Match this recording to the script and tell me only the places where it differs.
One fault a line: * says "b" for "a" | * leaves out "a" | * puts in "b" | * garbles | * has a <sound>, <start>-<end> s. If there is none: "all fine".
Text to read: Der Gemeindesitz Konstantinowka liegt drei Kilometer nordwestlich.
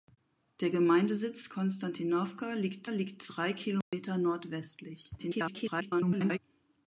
* puts in "liegt"
* has a dropout, 3.8-3.9 s
* garbles